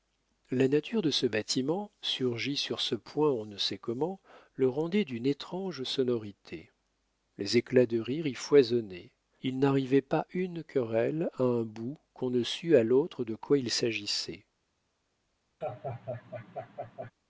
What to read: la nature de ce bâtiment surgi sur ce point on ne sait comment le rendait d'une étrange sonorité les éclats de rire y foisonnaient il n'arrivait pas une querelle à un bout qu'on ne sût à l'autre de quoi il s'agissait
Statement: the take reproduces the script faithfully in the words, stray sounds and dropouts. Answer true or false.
false